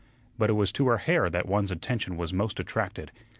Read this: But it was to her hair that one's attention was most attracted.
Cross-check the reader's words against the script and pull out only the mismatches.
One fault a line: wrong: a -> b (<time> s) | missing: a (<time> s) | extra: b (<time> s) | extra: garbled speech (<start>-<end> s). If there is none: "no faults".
no faults